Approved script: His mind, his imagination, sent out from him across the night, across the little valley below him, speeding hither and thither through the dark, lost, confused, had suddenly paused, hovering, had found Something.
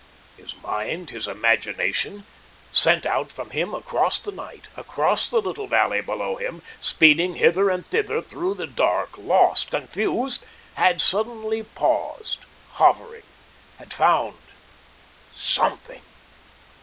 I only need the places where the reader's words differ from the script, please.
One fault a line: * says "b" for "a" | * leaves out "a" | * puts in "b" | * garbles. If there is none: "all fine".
all fine